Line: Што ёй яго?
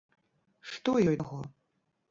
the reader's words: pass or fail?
pass